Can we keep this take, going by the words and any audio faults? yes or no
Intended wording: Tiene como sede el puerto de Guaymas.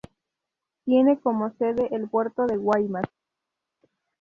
yes